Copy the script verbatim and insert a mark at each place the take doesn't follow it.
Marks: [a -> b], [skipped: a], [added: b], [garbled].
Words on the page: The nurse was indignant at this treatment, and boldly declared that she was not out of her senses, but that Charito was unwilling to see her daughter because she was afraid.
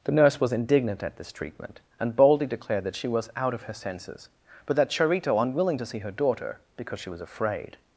The nurse was indignant at this treatment, and boldly declared that she was [skipped: not] out of her senses, but that Charito [skipped: was] unwilling to see her daughter because she was afraid.